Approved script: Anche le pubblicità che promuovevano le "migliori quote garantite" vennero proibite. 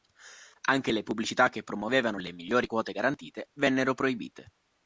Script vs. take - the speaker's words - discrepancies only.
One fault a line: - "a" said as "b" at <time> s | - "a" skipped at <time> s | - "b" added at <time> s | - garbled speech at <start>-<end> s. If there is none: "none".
none